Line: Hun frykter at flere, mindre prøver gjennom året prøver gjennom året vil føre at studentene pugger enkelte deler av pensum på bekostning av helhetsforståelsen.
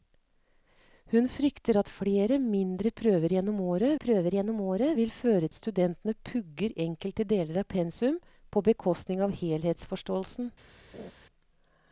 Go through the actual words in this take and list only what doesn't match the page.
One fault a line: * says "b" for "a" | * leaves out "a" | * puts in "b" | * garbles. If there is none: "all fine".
all fine